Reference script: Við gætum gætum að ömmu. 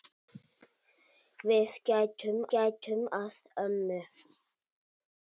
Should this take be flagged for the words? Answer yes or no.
no